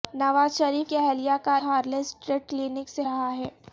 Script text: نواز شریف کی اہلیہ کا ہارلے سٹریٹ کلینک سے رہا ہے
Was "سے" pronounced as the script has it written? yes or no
yes